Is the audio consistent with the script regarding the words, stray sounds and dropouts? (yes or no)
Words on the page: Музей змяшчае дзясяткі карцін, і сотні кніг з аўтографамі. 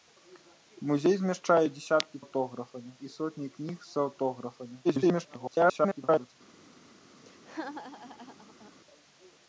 no